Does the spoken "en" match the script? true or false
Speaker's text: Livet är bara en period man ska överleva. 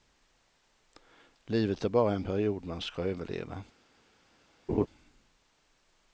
true